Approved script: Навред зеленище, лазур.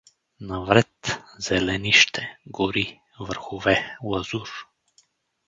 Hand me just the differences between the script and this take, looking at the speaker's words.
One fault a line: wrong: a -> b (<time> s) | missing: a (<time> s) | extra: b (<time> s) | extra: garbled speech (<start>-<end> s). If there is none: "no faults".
extra: гори върхове (2.5 s)